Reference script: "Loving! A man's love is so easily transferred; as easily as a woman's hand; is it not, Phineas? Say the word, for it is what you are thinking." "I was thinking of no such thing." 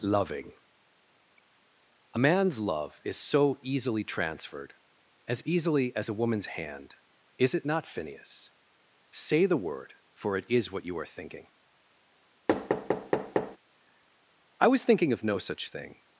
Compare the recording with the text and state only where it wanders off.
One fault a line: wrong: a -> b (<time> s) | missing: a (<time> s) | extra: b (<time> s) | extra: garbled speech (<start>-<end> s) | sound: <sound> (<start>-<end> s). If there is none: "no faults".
sound: thud (12.5-13.6 s)